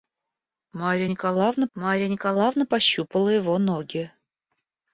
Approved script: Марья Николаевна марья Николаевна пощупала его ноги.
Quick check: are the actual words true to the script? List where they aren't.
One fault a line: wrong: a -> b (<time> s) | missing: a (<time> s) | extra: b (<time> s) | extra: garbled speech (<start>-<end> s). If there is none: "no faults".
no faults